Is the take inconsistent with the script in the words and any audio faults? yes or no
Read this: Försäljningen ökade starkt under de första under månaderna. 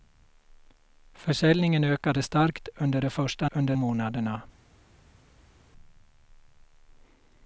no